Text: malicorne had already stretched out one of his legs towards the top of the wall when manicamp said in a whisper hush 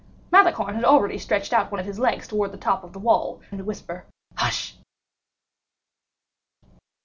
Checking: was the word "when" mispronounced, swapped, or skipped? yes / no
yes